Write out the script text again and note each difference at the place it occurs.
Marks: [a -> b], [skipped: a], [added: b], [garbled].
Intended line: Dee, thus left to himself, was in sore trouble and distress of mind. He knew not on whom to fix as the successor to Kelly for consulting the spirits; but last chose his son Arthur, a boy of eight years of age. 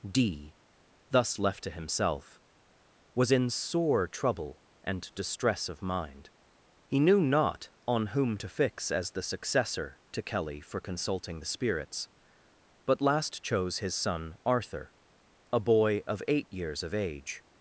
Dee, thus left to himself, was in sore trouble and distress of mind. He knew not on whom to fix as the successor to Kelly for consulting the spirits; but last chose his son Arthur, a boy of eight years of age.